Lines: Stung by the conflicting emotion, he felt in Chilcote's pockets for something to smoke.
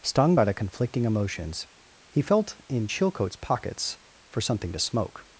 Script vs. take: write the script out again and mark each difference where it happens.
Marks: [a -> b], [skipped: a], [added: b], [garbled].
Stung by the conflicting [emotion, -> emotions] he felt in Chilcote's pockets for something to smoke.